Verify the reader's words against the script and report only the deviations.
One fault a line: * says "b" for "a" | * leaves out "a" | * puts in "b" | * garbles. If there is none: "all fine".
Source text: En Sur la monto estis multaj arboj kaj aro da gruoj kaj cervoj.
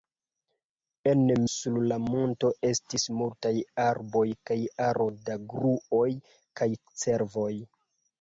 all fine